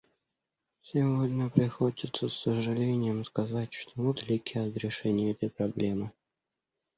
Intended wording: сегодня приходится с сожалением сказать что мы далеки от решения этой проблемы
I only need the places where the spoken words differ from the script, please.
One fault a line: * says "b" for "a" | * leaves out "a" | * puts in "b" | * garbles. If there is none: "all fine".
all fine